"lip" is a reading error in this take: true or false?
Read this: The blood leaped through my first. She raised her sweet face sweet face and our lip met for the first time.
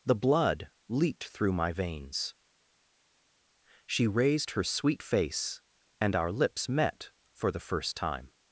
true